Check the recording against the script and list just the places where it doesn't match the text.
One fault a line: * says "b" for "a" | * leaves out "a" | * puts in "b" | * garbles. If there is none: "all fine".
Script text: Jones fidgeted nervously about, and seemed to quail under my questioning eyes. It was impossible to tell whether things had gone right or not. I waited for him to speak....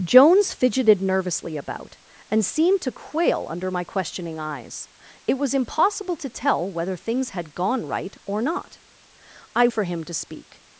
* leaves out "waited"